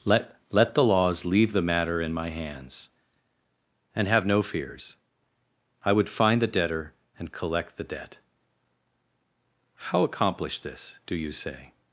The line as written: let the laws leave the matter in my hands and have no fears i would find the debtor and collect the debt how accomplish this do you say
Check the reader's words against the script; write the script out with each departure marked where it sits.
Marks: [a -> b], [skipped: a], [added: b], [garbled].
let [added: let] the laws leave the matter in my hands and have no fears i would find the debtor and collect the debt how accomplish this do you say